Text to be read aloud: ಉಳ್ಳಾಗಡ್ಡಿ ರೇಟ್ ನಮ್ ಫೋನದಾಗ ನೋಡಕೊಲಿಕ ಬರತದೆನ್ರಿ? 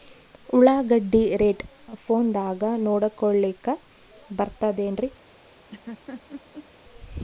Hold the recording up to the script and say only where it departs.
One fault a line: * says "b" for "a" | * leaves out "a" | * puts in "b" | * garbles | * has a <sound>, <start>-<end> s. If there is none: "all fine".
* leaves out "ನಮ್"
* has a laugh, 5.7-6.7 s